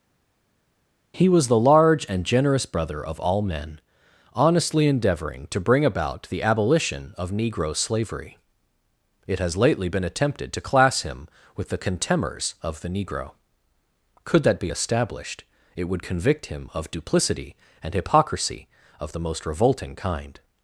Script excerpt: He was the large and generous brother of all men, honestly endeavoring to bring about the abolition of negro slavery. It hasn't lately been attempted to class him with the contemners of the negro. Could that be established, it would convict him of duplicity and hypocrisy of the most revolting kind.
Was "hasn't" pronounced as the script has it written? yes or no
no